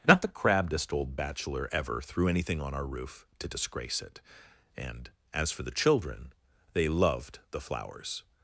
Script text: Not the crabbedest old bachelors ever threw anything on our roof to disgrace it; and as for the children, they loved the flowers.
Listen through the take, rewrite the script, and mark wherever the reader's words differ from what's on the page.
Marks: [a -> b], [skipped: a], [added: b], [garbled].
Not the crabbedest old [bachelors -> bachelor] ever threw anything on our roof to disgrace it; and as for the children, they loved the flowers.